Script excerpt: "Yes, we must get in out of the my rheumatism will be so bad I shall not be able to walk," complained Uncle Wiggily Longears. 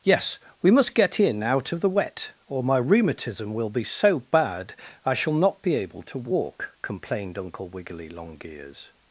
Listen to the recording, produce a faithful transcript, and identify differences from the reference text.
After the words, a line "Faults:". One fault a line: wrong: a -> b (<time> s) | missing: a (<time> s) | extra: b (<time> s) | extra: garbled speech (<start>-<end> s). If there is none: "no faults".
"Yes, we must get in out of the wet, or my rheumatism will be so bad I shall not be able to walk," complained Uncle Wiggily Longears.
Faults:
extra: wet or (1.9 s)